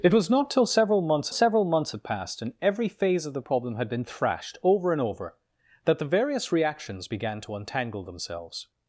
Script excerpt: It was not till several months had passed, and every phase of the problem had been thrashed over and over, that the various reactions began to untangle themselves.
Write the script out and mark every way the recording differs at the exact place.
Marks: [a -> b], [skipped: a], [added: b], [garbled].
It was not till several months [added: several months] had passed, and every phase of the problem had been thrashed over and over, that the various reactions began to untangle themselves.